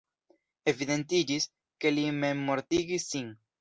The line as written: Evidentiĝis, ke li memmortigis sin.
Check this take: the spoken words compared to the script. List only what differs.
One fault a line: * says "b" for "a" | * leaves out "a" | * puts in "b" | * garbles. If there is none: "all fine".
all fine